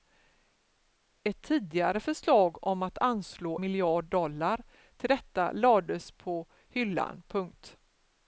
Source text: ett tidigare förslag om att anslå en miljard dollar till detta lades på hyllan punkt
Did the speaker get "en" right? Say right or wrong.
wrong